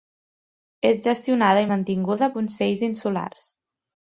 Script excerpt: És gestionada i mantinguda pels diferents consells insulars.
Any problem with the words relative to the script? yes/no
yes